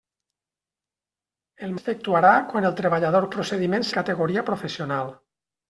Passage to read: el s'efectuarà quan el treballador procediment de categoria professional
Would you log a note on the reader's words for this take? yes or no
no